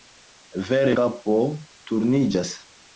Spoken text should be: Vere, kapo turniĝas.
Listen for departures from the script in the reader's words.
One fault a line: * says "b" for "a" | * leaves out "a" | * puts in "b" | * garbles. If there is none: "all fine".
all fine